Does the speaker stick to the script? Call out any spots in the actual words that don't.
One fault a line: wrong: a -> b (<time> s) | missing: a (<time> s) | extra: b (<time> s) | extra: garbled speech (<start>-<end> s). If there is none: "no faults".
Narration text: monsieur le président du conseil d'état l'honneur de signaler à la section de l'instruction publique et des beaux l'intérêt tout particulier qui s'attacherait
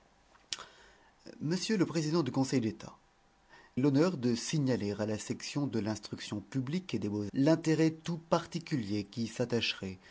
no faults